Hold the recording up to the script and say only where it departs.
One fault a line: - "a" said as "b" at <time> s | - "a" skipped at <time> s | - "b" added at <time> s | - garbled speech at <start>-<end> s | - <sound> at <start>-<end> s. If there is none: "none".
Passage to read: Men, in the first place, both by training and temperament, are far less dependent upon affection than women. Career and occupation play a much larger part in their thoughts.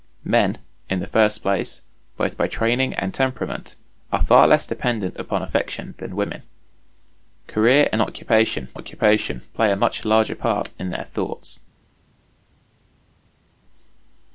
- "occupation" added at 8.7 s